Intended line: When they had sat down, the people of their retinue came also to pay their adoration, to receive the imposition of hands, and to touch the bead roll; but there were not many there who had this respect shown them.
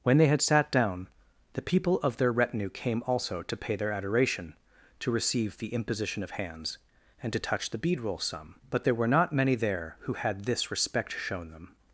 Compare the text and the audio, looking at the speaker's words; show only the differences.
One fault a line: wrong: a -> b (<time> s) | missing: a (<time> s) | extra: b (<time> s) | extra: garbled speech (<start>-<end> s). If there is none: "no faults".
extra: some (8.2 s)